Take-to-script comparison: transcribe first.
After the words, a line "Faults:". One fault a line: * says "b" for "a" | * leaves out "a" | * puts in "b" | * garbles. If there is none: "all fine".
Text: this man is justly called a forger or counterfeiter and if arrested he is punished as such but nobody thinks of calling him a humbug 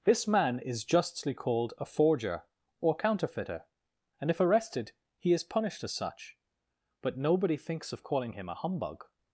this man is justly called a forger or counterfeiter and if arrested he is punished as such but nobody thinks of calling him a humbug
Faults:
all fine